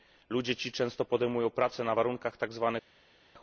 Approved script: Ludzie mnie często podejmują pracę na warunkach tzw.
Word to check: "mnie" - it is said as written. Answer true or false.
false